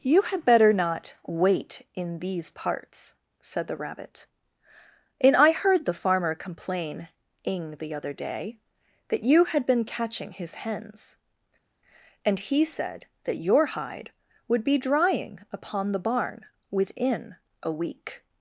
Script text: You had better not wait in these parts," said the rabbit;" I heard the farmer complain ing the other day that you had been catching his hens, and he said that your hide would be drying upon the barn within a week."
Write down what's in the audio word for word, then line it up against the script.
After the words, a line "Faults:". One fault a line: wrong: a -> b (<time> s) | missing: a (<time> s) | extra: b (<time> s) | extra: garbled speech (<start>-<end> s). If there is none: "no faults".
You had better not wait in these parts," said the rabbit;" and I heard the farmer complain ing the other day that you had been catching his hens, and he said that your hide would be drying upon the barn within a week."
Faults:
extra: and (5.2 s)